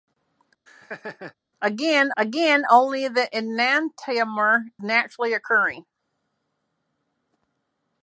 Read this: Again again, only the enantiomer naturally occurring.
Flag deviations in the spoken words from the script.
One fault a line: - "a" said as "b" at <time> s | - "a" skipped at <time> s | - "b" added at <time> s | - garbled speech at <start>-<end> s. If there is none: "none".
none